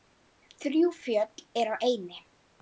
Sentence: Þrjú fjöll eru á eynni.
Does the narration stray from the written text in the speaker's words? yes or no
no